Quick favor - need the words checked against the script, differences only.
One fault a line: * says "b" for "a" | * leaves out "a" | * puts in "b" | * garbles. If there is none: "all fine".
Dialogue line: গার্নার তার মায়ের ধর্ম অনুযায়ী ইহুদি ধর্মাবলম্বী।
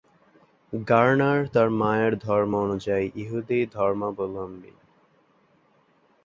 all fine